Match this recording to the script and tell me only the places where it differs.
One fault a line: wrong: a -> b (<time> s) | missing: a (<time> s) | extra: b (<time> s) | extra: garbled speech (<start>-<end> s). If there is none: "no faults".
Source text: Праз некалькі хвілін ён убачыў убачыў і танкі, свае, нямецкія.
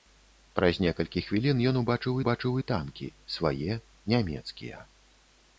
no faults